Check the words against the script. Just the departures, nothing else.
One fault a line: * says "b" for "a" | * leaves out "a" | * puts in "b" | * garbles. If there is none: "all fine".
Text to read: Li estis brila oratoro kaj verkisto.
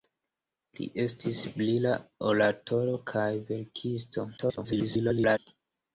* garbles